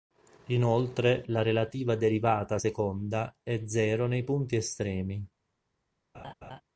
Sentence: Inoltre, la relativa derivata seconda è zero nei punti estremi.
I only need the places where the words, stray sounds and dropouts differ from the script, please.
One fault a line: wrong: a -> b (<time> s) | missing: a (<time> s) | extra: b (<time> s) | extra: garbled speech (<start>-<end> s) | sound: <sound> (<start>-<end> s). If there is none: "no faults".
sound: laugh (6.1-6.6 s)